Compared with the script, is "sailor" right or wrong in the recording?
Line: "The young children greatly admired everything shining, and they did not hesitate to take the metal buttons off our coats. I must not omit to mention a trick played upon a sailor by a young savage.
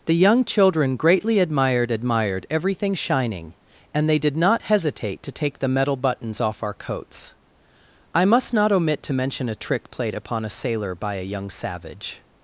right